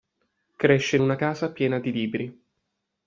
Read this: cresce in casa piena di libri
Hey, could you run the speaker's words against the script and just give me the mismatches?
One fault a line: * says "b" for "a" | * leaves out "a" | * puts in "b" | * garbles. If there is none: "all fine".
* puts in "una"